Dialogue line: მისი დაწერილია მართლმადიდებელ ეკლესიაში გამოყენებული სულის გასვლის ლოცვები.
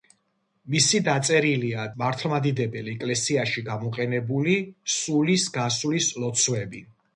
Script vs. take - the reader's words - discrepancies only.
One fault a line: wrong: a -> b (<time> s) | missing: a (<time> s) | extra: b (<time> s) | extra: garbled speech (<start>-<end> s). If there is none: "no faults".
no faults